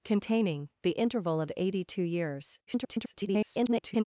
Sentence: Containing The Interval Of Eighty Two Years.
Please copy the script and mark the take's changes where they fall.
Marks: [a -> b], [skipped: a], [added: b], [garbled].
Containing The Interval Of Eighty Two Years. [garbled]